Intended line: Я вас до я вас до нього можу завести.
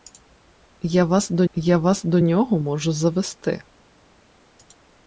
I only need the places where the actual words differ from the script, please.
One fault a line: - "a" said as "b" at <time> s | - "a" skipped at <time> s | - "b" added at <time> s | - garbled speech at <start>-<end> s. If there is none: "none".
none